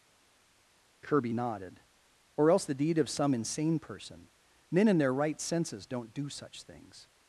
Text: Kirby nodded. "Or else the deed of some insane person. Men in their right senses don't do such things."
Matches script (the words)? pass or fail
pass